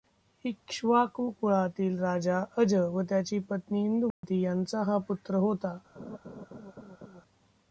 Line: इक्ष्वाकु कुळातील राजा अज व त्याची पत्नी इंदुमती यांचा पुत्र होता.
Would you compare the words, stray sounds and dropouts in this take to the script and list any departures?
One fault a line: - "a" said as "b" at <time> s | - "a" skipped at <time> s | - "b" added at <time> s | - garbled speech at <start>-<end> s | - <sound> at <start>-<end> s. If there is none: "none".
- dropout at 4.1-4.2 s
- "हा" added at 4.8 s
- laugh at 6.0-7.2 s